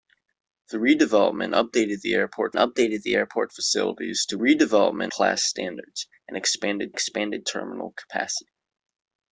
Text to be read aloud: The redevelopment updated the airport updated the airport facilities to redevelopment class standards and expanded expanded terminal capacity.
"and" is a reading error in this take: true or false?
false